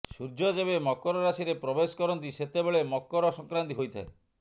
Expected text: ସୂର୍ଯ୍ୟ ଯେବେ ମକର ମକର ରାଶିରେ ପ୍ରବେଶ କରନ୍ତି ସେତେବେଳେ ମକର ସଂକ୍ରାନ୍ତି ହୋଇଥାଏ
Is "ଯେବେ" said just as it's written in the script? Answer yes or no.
yes